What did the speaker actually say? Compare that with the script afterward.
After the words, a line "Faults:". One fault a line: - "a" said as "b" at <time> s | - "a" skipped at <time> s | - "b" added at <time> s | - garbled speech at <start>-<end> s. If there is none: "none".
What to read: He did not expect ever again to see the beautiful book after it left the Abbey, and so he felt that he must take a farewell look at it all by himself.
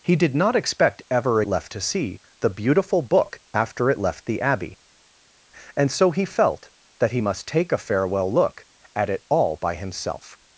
He did not expect ever left to see the beautiful book after it left the Abbey, and so he felt that he must take a farewell look at it all by himself.
Faults:
- "again" said as "left" at 1.5 s